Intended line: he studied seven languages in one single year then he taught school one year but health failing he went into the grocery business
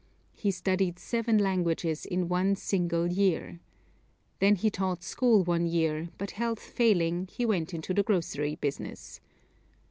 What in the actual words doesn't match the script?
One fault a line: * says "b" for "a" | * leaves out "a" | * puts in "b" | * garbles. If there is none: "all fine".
all fine